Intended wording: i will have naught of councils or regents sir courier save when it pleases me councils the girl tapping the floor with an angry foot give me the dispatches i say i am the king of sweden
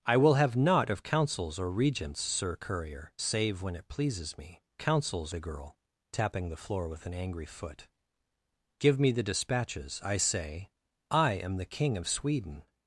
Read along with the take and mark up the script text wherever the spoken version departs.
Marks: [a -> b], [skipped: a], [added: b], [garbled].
i will have naught of councils or regents sir courier save when it pleases me councils the girl tapping the floor with an angry foot give me the dispatches i say i am the king of sweden